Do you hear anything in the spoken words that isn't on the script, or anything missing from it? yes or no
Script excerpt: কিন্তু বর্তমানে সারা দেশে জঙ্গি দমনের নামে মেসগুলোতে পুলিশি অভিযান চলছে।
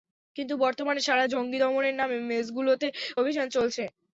yes